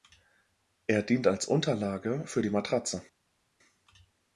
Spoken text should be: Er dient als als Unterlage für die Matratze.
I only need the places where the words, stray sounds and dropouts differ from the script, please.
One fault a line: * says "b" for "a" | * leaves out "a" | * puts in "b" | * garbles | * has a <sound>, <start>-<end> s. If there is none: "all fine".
* leaves out "als"